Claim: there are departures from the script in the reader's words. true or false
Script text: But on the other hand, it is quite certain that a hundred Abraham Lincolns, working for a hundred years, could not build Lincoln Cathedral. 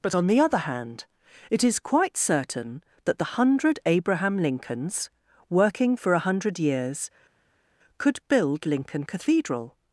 true